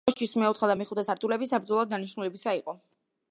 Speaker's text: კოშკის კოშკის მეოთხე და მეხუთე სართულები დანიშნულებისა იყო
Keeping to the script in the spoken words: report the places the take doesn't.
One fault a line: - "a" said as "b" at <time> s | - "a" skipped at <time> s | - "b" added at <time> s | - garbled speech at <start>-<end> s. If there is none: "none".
- "კოშკის" skipped at 0.3 s
- "საბრძოლო" added at 1.5 s